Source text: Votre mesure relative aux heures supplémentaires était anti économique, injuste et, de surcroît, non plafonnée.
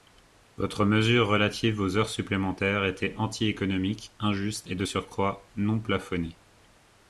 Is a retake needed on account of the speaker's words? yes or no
no